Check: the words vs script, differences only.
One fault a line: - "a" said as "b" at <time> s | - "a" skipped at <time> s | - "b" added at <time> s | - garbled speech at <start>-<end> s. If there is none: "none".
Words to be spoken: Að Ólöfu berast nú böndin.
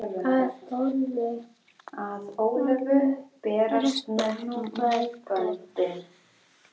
none